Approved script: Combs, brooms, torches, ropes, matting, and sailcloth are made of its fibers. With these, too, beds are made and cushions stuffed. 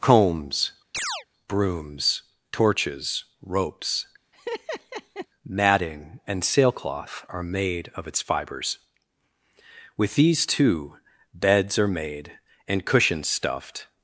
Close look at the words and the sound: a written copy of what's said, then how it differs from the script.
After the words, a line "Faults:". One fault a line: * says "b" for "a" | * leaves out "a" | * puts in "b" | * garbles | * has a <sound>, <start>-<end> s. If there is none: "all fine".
Combs, brooms, torches, ropes, matting, and sailcloth are made of its fibers. With these, too, beds are made and cushions stuffed.
Faults:
* has a chirp, 0.9-1.3 s
* has a laugh, 4.3-5.3 s